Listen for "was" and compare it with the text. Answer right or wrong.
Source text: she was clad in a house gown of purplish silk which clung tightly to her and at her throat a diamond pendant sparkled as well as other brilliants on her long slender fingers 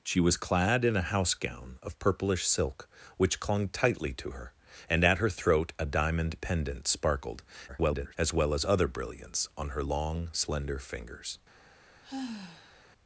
right